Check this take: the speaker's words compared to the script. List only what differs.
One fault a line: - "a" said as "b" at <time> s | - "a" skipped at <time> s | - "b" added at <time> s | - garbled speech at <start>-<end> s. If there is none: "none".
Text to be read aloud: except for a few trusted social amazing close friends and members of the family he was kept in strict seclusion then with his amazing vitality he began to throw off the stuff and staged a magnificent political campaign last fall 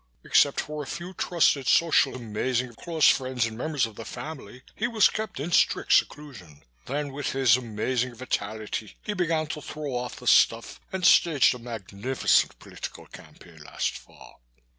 none